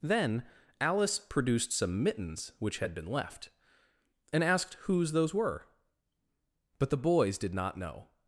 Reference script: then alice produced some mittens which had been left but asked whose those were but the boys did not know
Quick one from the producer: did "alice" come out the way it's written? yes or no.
yes